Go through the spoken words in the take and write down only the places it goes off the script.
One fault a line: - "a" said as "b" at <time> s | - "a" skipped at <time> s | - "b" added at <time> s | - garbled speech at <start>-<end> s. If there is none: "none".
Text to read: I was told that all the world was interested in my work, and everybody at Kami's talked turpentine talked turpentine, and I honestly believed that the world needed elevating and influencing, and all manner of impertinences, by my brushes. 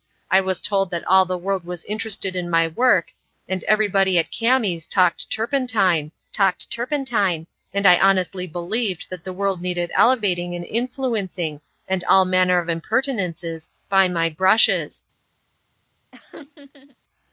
none